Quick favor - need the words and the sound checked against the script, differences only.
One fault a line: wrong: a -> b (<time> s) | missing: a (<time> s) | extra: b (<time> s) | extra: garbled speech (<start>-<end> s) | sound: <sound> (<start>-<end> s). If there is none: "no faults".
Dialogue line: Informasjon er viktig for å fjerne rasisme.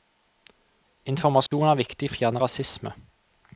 sound: dropout (1.5-1.5 s)
missing: for (2.1 s)